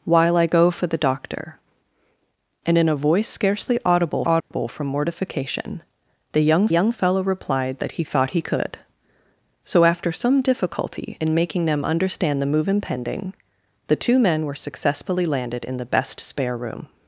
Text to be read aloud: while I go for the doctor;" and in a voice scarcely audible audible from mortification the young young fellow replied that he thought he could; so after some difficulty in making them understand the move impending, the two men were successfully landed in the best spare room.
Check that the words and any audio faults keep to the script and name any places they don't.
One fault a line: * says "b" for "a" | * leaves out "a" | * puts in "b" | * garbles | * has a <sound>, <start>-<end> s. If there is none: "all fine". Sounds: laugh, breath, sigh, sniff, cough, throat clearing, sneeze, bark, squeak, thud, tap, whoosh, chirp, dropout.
* has a dropout, 4.4-4.5 s